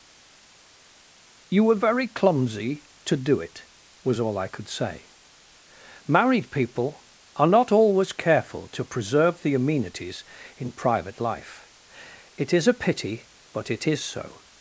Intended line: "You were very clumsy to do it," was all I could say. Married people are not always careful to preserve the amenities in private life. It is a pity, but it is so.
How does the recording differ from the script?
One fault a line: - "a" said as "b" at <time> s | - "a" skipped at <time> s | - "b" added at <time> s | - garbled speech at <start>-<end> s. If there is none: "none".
none